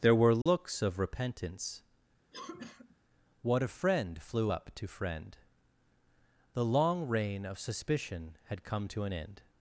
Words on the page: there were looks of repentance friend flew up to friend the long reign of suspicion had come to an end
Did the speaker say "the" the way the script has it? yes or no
yes